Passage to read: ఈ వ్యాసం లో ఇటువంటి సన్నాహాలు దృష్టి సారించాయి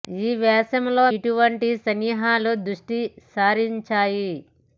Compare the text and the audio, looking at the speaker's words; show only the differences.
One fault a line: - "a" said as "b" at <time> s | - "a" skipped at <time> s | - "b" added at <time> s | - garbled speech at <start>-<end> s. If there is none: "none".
none